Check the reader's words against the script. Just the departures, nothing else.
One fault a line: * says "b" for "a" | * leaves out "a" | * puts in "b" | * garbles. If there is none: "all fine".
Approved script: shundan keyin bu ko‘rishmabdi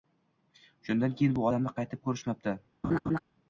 * puts in "odamni qaytib"